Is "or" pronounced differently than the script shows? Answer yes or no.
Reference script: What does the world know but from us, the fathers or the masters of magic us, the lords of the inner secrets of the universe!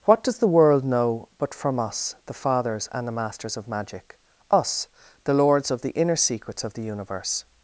yes